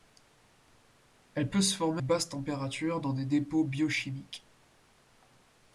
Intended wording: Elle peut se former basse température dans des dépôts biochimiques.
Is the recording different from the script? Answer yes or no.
no